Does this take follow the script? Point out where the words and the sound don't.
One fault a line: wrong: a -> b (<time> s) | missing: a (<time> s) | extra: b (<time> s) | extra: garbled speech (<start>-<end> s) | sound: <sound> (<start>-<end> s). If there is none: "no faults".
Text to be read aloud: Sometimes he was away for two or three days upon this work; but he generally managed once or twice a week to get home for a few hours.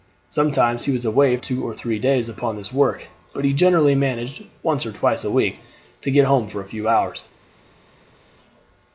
missing: for (1.4 s)